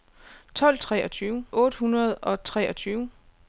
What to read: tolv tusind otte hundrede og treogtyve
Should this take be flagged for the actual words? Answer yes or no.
yes